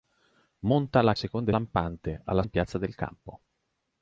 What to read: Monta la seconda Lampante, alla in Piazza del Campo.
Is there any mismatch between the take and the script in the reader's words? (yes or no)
no